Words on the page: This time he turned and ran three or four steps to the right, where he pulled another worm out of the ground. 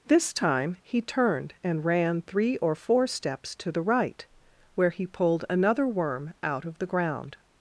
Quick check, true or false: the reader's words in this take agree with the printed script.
true